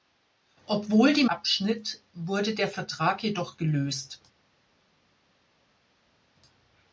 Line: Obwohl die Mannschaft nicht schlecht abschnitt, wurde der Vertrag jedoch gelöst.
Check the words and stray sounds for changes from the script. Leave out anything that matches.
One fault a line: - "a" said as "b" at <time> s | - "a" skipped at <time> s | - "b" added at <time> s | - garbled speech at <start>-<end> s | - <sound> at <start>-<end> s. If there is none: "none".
- "Mannschaft nicht schlecht" skipped at 1.2 s